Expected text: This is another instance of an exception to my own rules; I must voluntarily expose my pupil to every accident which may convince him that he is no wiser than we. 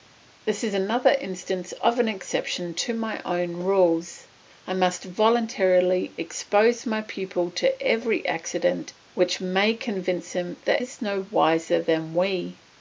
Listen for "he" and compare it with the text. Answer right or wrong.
wrong